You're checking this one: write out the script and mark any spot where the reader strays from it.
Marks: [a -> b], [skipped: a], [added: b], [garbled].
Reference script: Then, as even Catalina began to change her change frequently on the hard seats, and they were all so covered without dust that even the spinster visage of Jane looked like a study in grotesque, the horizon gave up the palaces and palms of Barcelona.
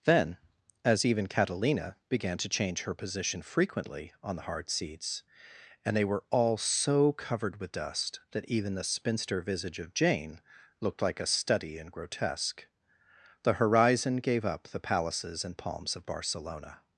Then, as even Catalina began to change her [change -> position] frequently on the hard seats, and they were all so covered [without -> with] dust that even the spinster visage of Jane looked like a study in grotesque, the horizon gave up the palaces and palms of Barcelona.